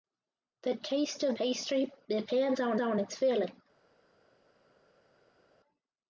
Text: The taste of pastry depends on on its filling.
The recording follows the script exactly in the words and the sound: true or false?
true